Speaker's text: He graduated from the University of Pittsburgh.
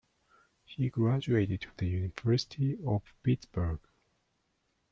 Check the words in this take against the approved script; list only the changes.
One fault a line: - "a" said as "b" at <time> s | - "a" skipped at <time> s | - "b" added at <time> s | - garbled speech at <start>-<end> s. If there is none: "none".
- "from" skipped at 1.7 s